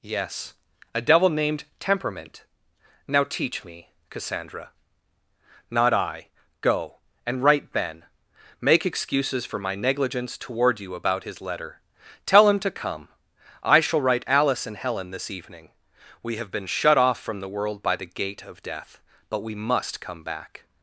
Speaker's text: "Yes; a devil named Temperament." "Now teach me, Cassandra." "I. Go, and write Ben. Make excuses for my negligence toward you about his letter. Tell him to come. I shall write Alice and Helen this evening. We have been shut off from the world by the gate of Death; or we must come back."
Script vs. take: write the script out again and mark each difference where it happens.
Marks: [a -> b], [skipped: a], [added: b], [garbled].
"Yes; a devil named Temperament." "Now teach me, Cassandra." [added: Not] "I. Go, and write Ben. Make excuses for my negligence toward you about his letter. Tell him to come. I shall write Alice and Helen this evening. We have been shut off from the world by the gate of Death; [or -> but] we must come back."